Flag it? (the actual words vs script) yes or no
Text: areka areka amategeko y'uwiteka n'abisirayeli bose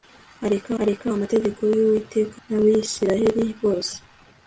no